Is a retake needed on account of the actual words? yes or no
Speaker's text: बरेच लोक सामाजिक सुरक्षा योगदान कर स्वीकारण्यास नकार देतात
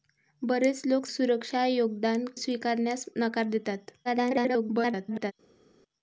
yes